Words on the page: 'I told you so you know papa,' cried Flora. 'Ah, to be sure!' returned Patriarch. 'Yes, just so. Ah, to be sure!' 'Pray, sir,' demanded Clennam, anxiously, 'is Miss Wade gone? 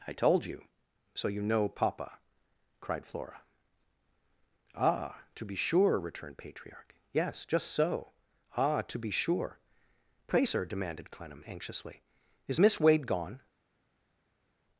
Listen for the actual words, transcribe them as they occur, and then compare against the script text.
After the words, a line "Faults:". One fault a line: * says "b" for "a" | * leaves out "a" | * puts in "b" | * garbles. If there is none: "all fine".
'I told you so you know papa,' cried Flora. 'Ah, to be sure!' returned Patriarch. 'Yes, just so. Ah, to be sure!' 'Pray, sir,' demanded Clennam, anxiously, 'is Miss Wade gone?
Faults:
all fine